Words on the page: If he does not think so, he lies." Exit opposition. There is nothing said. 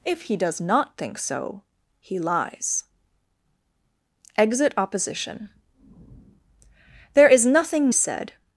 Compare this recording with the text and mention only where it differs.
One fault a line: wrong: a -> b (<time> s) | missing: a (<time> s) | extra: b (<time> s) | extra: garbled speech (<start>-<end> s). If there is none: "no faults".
no faults